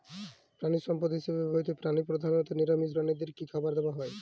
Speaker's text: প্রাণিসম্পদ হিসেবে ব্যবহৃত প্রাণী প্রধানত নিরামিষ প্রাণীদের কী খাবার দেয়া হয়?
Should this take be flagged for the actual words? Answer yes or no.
no